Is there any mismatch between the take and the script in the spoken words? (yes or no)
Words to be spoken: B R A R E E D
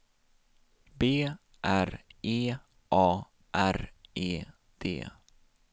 yes